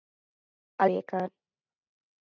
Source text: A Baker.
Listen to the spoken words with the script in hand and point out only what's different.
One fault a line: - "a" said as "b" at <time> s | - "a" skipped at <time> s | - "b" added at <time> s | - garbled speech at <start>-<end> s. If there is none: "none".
none